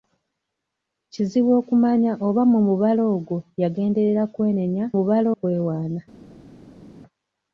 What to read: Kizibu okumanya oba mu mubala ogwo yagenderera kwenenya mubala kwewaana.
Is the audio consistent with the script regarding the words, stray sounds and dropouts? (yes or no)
yes